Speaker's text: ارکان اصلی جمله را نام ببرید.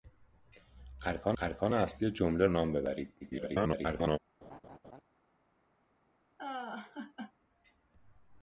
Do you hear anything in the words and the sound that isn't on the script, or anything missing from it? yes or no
yes